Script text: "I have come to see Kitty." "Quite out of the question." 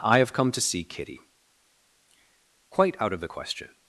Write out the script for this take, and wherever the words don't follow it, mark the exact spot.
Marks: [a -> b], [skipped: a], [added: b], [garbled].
"I have come to see Kitty." "Quite out of the question."